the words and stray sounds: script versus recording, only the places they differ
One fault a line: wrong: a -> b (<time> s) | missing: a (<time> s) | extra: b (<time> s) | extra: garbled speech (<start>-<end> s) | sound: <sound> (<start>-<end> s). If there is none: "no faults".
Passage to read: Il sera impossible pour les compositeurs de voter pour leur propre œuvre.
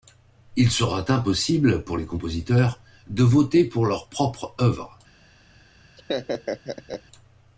sound: laugh (6.0-7.0 s)